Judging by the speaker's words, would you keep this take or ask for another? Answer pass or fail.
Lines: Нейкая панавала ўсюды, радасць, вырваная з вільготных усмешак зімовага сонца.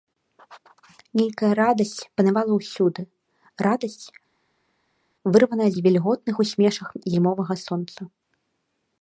fail